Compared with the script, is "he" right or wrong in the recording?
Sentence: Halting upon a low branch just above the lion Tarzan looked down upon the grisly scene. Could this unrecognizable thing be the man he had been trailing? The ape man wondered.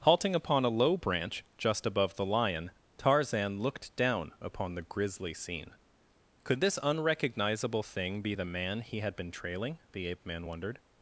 right